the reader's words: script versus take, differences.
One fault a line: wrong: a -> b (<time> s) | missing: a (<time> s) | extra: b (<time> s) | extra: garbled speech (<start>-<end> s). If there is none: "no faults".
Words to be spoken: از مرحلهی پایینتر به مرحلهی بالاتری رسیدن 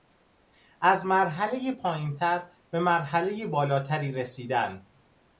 no faults